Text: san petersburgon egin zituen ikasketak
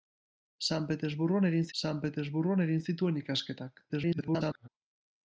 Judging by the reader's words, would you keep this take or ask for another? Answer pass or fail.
fail